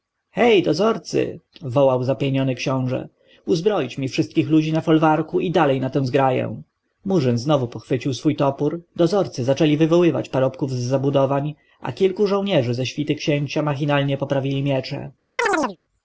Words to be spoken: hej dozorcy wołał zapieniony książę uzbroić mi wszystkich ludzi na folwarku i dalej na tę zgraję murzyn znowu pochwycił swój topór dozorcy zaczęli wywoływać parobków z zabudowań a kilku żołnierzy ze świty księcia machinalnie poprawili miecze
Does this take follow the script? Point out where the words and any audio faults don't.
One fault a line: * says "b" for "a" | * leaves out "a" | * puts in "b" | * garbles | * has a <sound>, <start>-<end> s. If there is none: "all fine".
* has a chirp, 15.4-15.8 s